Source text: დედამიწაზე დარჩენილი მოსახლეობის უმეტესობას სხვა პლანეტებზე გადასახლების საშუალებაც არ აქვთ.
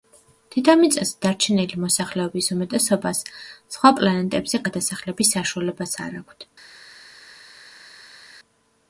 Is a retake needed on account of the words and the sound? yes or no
no